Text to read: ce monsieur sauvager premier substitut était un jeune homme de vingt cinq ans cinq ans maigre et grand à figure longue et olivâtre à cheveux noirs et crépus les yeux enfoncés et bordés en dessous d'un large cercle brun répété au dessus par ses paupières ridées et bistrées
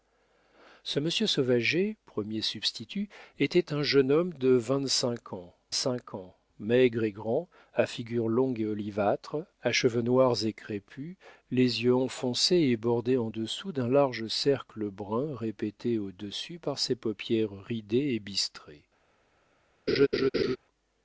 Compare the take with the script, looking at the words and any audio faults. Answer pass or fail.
fail